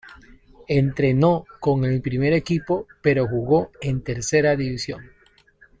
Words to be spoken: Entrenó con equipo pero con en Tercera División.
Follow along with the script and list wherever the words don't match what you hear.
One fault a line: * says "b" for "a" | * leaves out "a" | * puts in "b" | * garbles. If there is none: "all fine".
* puts in "el primer"
* says "jugó" for "con"